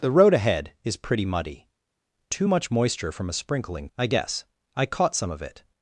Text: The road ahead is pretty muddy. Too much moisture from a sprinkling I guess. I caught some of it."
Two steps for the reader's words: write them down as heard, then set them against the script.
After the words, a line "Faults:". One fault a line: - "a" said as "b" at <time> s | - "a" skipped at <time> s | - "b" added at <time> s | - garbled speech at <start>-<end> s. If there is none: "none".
The road ahead is pretty muddy. Too much moisture from a sprinkling I guess. I caught some of it."
Faults:
none